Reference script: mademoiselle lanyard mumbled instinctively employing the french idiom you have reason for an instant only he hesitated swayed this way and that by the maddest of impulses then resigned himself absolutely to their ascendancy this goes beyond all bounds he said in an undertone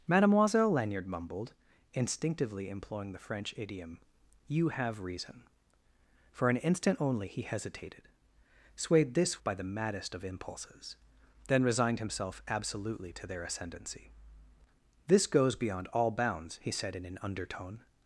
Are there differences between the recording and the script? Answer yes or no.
yes